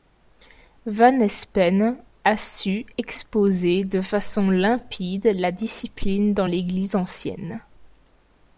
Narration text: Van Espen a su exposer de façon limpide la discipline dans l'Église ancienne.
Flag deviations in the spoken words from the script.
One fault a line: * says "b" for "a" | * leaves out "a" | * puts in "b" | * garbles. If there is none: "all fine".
all fine